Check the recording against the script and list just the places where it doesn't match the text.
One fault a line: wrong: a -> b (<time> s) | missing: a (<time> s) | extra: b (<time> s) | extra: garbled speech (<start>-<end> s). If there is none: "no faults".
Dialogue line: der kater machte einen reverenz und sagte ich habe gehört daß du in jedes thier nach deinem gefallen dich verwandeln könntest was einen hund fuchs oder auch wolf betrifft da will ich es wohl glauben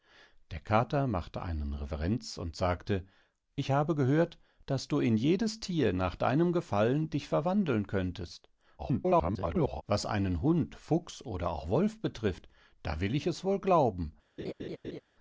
extra: garbled speech (8.8-9.8 s)